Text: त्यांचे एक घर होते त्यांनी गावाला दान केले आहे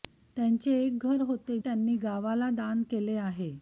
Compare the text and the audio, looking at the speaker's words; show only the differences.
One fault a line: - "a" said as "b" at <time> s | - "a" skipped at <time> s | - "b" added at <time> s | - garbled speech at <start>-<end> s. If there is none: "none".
none